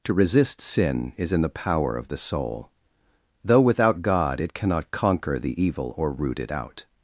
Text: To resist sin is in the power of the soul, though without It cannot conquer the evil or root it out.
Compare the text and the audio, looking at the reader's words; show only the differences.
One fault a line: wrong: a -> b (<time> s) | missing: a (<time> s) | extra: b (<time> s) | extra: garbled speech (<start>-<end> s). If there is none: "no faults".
extra: God (4.0 s)